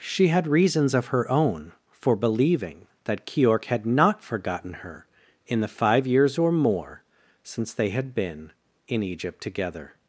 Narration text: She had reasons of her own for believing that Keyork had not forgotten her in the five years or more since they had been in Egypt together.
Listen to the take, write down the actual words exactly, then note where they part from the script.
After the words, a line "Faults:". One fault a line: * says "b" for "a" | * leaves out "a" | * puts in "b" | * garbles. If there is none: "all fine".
She had reasons of her own for believing that Keyork had not forgotten her in the five years or more since they had been in Egypt together.
Faults:
all fine